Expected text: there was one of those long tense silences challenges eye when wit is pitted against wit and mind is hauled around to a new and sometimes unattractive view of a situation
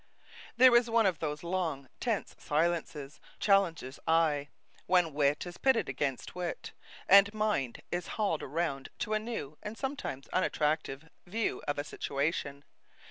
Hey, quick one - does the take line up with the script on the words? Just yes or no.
yes